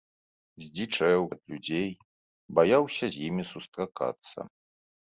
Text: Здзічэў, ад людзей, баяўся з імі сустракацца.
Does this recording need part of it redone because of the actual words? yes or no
no